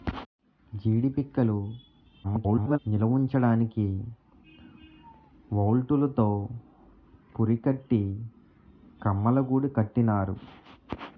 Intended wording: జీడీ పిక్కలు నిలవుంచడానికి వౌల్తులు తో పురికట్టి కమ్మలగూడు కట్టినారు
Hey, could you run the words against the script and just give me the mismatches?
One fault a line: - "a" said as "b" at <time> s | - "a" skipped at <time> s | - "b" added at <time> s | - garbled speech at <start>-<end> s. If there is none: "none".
- garbled speech at 2.2-2.8 s